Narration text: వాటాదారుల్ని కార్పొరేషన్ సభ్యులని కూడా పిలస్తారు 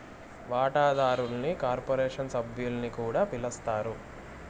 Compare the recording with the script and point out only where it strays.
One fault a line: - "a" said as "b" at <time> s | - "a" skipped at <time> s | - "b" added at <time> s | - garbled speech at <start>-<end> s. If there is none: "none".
none